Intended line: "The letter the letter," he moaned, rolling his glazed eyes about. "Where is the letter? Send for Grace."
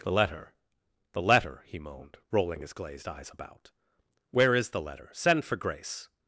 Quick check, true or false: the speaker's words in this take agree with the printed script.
true